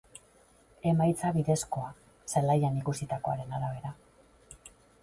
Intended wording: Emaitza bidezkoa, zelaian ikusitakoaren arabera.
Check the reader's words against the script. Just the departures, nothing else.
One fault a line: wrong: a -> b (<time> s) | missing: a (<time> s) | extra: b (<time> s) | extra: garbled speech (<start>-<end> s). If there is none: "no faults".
no faults